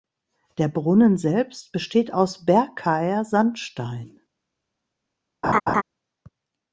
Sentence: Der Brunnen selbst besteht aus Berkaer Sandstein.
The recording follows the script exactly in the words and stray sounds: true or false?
false